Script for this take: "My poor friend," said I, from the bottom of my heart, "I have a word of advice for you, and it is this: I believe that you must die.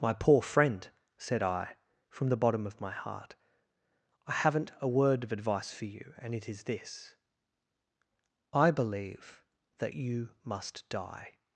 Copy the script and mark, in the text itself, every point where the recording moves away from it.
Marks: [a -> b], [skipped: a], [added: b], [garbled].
"My poor friend," said I, from the bottom of my heart, "I [have -> haven't] a word of advice for you, and it is this: I believe that you must die.